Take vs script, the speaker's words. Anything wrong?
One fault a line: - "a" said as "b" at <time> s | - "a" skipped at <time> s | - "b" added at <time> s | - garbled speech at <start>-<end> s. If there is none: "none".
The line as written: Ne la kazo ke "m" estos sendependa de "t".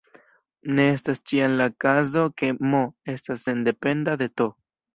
- "estas ĉiam" added at 0.9 s
- "estos" said as "estas" at 3.2 s